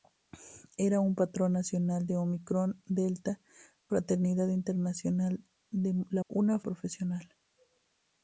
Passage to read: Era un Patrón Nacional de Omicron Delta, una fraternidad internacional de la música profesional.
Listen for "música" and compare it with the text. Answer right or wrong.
wrong